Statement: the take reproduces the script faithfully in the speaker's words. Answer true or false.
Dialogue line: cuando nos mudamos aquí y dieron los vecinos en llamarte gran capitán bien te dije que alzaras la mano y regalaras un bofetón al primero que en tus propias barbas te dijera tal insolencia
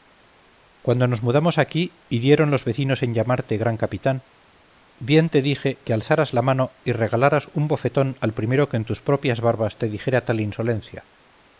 true